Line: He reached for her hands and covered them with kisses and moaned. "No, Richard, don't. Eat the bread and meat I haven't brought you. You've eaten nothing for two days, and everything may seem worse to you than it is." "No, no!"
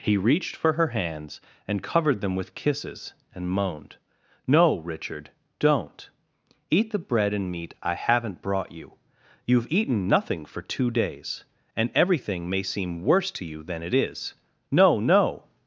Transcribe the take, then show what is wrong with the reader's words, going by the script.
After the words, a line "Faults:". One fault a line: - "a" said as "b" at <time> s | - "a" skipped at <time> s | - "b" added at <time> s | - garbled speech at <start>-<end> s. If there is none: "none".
He reached for her hands and covered them with kisses and moaned. "No, Richard, don't. Eat the bread and meat I haven't brought you. You've eaten nothing for two days, and everything may seem worse to you than it is." "No, no!"
Faults:
none